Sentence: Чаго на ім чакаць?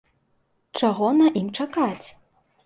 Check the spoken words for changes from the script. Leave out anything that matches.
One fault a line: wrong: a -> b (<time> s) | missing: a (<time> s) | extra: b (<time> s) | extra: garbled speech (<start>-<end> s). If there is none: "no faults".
no faults